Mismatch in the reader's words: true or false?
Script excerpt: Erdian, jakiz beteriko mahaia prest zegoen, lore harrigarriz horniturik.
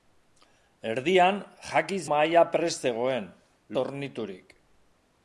true